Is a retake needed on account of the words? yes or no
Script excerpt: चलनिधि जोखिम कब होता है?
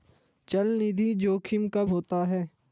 no